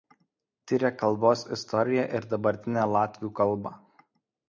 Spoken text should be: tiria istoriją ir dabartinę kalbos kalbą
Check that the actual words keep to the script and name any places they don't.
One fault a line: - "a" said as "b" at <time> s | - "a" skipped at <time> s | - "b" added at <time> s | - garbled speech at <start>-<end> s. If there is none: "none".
- "kalbos" added at 1.0 s
- "kalbos" said as "latvių" at 3.0 s